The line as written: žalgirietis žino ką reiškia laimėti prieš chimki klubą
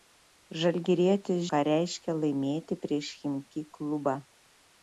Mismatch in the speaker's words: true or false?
true